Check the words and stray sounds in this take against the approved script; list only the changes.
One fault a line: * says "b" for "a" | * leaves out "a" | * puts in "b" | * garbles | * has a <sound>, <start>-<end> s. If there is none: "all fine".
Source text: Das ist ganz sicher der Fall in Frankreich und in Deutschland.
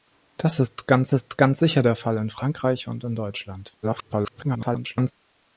* puts in "ist ganz"
* garbles